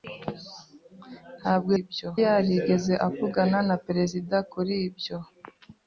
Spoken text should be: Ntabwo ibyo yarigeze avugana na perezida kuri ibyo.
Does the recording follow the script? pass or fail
pass